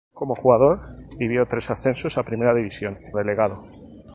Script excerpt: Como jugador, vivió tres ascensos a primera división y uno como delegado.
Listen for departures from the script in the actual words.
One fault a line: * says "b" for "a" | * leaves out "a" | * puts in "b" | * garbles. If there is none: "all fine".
* leaves out "y uno como"